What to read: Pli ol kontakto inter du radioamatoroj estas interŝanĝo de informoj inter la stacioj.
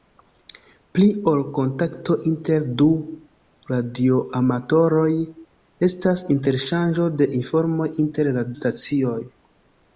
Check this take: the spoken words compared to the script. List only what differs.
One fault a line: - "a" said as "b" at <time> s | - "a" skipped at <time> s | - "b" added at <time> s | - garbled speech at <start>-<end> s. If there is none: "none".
none